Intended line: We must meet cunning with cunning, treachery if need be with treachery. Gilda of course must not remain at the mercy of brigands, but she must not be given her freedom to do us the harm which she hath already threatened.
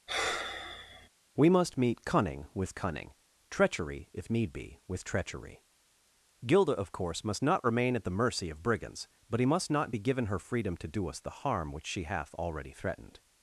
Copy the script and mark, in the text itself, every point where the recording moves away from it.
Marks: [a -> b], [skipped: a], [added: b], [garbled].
We must meet cunning with cunning, treachery if need be with treachery. Gilda of course must not remain at the mercy of brigands, but [she -> he] must not be given her freedom to do us the harm which she hath already threatened.